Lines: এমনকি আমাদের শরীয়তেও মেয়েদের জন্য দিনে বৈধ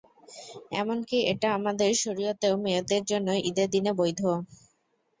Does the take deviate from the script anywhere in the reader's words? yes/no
yes